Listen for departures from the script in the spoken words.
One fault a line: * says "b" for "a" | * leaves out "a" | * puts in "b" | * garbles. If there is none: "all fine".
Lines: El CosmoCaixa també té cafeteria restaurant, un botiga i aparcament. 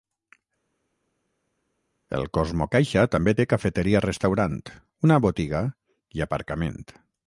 * says "una" for "un"